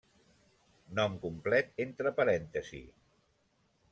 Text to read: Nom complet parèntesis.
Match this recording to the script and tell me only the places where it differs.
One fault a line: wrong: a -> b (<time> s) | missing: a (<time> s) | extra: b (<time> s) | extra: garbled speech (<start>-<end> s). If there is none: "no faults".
extra: entre (1.9 s)